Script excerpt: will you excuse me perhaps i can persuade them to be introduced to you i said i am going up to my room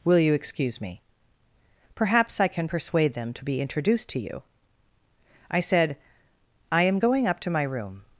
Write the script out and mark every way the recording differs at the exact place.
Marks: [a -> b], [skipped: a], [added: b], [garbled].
will you excuse me perhaps i can persuade them to be introduced to you i said i am going up to my room